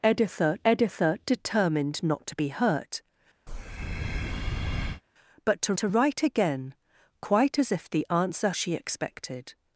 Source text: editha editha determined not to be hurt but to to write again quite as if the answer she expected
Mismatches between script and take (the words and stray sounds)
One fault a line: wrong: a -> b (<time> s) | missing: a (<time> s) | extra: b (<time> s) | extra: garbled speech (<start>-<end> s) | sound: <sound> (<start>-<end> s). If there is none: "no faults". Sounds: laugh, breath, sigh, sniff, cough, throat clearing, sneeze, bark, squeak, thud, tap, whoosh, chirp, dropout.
sound: breath (3.5-5.0 s)